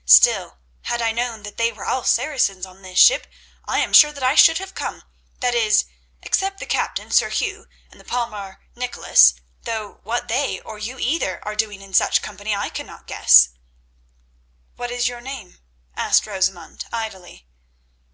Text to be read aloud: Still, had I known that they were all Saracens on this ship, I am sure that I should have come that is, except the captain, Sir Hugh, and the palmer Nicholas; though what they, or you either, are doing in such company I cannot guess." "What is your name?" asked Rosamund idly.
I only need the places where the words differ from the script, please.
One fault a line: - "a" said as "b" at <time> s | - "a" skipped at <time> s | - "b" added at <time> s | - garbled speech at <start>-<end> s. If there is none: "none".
none